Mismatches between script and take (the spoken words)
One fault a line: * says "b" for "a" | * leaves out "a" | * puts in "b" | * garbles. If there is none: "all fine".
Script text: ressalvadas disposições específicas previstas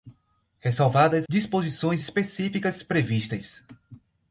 all fine